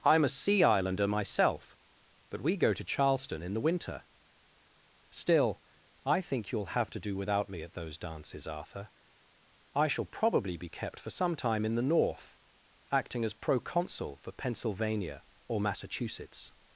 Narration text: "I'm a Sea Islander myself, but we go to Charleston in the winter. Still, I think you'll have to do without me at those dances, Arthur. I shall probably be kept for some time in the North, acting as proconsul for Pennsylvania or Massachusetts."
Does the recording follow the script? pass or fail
pass